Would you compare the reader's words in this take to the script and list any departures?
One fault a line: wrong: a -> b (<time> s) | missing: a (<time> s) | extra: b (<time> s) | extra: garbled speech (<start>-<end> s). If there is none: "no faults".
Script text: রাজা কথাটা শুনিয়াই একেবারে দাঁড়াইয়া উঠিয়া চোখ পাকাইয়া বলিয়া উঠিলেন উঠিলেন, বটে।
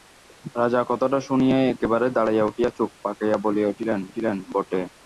no faults